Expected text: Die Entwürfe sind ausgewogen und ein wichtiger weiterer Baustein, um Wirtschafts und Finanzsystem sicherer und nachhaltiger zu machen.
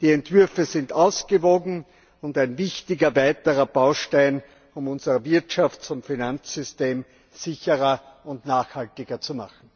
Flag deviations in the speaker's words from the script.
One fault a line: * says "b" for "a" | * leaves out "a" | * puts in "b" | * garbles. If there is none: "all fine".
* puts in "unser"